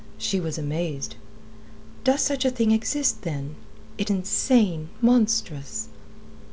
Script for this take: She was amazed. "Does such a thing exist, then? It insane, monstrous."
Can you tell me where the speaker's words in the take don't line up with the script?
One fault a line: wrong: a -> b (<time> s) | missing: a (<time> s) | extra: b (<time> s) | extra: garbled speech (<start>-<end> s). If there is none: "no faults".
no faults